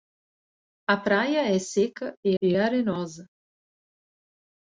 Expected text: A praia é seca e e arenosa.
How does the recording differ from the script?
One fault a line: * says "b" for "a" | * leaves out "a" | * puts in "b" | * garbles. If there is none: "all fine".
all fine